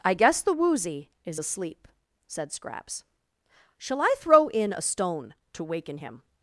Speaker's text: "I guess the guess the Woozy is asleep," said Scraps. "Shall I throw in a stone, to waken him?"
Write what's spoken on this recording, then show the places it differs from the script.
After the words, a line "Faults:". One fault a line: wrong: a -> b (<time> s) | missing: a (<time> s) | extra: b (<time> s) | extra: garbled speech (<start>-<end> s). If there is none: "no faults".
"I guess the Woozy is asleep," said Scraps. "Shall I throw in a stone, to waken him?"
Faults:
missing: guess the (0.5 s)